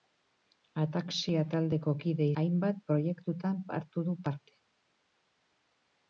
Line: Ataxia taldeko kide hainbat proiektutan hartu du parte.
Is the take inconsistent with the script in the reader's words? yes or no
no